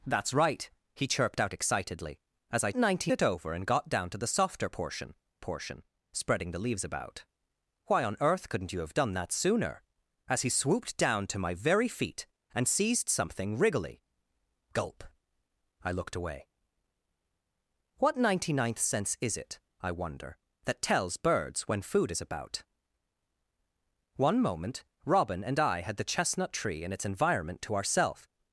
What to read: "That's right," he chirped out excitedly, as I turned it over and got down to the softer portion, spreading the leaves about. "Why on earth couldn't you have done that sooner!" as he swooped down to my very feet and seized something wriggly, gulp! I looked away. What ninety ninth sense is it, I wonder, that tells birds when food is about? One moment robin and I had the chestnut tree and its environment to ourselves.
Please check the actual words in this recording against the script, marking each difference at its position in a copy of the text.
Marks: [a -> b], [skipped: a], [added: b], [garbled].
"That's right," he chirped out excitedly, as I [turned -> ninety] it over and got down to the softer portion, [added: portion] spreading the leaves about. "Why on earth couldn't you have done that sooner!" as he swooped down to my very feet and seized something wriggly, gulp! I looked away. What ninety ninth sense is it, I wonder, that tells birds when food is about? One moment robin and I had the chestnut tree and its environment to ourselves.